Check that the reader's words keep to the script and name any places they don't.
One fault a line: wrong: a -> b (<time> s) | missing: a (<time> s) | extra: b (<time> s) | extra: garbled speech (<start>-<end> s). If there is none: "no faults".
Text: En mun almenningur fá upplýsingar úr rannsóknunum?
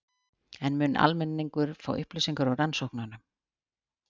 no faults